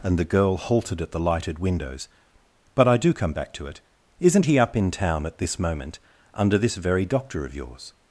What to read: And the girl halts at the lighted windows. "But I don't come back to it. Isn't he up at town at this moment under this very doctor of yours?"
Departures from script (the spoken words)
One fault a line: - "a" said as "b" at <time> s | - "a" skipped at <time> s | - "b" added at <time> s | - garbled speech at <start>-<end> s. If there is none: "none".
- "halts" said as "halted" at 0.6 s
- "don't" said as "do" at 3.0 s
- "at" said as "in" at 4.8 s